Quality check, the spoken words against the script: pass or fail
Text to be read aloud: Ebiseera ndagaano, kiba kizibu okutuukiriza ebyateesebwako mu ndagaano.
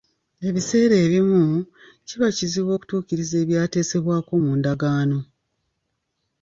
fail